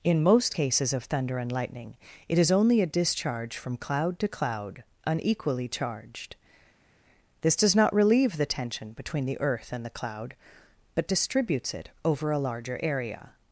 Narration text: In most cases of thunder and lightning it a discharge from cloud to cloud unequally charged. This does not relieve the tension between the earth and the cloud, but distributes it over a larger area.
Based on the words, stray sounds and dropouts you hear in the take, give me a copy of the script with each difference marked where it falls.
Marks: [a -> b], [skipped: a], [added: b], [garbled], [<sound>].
In most cases of thunder and lightning it [added: is only] a discharge from cloud to cloud unequally charged. This does not relieve the tension between the earth and the cloud, but distributes it over a larger area.